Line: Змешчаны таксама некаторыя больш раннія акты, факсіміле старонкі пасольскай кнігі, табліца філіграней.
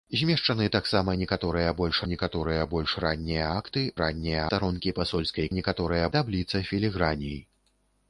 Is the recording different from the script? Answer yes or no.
yes